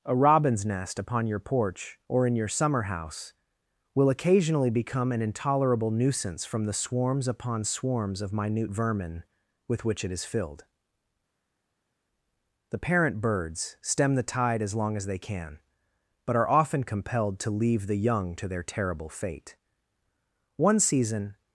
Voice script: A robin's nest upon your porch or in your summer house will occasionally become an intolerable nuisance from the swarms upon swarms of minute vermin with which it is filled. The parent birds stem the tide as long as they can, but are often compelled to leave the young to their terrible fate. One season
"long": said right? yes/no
yes